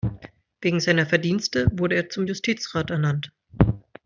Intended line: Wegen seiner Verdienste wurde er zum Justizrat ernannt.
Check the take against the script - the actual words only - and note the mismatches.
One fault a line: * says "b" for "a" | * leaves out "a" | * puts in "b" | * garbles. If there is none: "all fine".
all fine